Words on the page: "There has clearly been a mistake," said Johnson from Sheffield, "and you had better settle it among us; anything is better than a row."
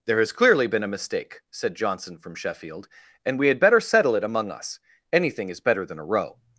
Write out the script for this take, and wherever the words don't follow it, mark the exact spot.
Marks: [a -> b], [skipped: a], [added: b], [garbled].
"There has clearly been a mistake," said Johnson from Sheffield, "and [you -> we] had better settle it among us; anything is better than a row."